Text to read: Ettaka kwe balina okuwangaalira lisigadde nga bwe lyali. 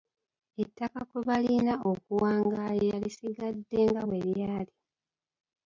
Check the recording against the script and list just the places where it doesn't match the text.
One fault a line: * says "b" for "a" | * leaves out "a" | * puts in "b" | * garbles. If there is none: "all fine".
all fine